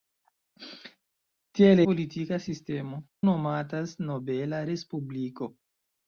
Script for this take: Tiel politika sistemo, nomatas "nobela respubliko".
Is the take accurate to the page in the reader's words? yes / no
yes